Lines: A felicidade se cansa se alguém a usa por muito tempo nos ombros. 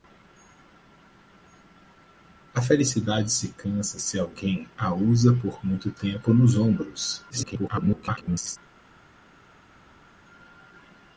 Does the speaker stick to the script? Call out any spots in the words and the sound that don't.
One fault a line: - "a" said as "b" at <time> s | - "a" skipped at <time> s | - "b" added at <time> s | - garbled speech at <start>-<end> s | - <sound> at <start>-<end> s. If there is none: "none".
- garbled speech at 7.3-8.6 s